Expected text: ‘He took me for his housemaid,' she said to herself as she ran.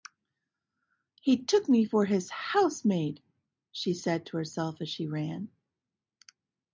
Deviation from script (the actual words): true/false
false